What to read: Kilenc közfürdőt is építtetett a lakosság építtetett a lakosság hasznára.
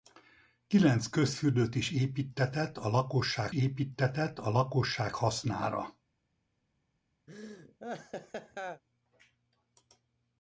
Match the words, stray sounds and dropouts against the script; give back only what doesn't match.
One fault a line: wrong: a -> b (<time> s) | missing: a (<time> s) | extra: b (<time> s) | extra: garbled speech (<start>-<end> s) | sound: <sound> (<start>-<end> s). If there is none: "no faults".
sound: laugh (7.3-8.8 s)